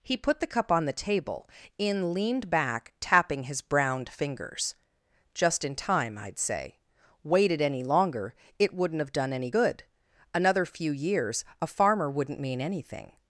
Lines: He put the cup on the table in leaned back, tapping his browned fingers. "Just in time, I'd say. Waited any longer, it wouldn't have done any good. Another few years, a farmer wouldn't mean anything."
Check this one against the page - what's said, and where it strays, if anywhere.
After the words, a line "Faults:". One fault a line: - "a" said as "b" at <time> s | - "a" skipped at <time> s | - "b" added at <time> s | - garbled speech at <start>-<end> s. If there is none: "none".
He put the cup on the table in leaned back, tapping his browned fingers. "Just in time, I'd say. Waited any longer, it wouldn't have done any good. Another few years, a farmer wouldn't mean anything."
Faults:
none